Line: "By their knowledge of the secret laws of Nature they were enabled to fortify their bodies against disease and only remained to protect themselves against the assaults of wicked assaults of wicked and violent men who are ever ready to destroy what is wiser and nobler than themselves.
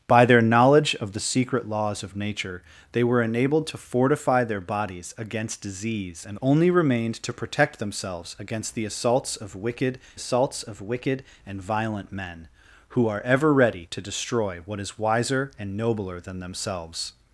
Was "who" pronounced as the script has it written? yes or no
yes